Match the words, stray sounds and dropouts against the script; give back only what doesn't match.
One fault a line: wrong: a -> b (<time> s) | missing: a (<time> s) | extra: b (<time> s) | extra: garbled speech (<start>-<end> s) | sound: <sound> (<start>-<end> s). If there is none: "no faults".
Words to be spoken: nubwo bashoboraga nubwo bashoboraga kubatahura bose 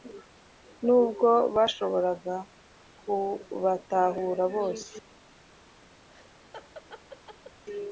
missing: nubwo bashoboraga (2.4 s)
sound: laugh (6.1-7.6 s)